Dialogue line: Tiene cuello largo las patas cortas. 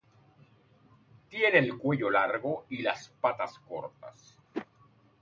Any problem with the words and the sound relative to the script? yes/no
yes